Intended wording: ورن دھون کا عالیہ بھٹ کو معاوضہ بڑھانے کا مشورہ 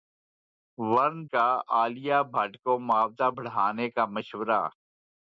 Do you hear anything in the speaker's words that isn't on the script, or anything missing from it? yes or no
yes